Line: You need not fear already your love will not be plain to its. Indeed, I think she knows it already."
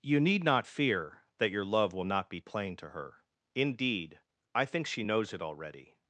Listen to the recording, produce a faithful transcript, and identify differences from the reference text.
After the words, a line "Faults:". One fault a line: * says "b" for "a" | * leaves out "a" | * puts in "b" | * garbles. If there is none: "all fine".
You need not fear that your love will not be plain to her. Indeed, I think she knows it already."
Faults:
* says "that" for "already"
* says "her" for "its"